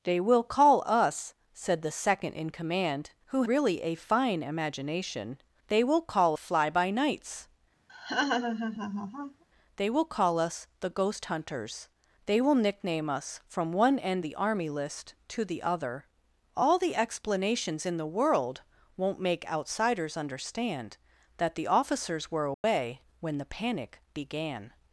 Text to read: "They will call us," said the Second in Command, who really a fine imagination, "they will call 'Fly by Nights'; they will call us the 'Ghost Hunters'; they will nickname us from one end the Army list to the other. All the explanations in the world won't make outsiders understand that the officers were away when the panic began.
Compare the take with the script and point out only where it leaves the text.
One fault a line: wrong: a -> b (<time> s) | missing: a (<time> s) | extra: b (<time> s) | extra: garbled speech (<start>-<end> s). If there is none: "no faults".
no faults